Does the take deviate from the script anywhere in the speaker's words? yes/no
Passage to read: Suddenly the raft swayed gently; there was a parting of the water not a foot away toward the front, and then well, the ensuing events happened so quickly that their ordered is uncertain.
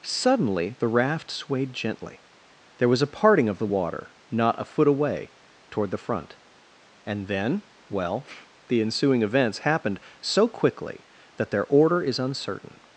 yes